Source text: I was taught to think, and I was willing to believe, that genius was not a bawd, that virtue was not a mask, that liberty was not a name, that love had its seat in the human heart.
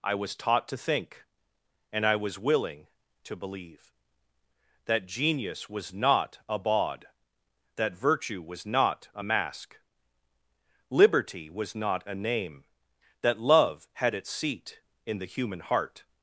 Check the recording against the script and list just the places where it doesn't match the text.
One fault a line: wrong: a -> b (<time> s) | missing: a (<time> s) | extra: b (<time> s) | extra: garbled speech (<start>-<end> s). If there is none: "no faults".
missing: that (9.8 s)